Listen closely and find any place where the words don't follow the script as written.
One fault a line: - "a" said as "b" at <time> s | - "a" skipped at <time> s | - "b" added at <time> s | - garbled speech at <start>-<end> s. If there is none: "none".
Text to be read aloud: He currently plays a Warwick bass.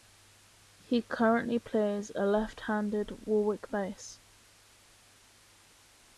- "left handed" added at 2.2 s